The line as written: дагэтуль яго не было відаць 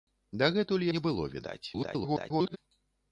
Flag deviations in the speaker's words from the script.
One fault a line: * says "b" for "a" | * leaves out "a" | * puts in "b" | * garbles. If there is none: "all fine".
* leaves out "яго"
* garbles